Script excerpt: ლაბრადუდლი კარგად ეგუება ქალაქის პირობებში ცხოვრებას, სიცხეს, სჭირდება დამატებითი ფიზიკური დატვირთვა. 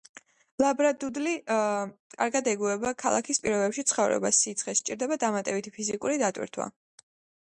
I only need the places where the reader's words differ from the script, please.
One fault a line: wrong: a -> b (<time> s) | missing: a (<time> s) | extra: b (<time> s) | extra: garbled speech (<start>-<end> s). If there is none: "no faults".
no faults